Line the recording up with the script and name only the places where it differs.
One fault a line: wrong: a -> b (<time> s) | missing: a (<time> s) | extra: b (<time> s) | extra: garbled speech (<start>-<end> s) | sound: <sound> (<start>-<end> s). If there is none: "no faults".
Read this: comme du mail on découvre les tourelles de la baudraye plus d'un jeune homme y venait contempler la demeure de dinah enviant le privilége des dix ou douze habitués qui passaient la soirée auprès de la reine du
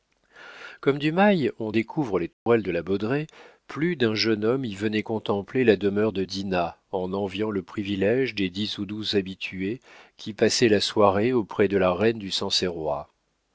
sound: dropout (2.3-2.5 s)
extra: en (6.9 s)